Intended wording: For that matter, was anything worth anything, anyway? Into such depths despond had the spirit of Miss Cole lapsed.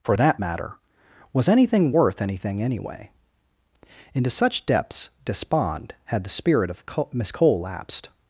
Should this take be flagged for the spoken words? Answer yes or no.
no